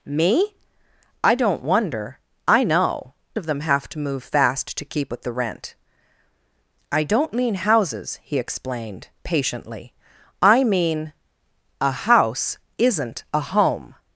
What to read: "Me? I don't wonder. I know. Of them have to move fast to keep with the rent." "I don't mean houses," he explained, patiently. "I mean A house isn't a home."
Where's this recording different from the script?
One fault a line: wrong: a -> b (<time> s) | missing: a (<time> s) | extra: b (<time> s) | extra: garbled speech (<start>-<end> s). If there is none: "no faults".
no faults